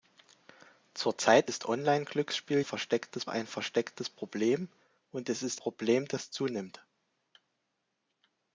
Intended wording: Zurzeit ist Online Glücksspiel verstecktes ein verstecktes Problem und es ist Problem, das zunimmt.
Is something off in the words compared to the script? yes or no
no